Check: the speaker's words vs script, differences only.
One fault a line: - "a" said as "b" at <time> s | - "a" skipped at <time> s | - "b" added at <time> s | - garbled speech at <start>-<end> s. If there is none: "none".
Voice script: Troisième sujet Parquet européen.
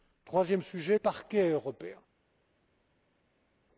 none